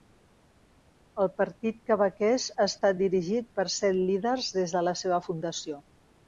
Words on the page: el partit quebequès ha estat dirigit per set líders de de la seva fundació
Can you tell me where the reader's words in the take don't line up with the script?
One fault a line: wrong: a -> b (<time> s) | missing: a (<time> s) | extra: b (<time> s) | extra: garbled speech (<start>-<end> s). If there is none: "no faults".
wrong: de -> des (4.6 s)